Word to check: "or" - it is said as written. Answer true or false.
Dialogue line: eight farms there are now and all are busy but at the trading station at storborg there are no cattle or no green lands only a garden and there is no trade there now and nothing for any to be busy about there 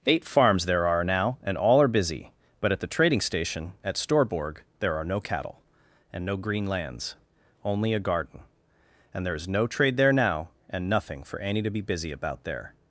false